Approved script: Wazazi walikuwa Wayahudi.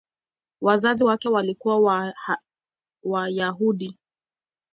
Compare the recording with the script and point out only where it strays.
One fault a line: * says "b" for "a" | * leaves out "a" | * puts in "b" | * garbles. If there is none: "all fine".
* puts in "wake"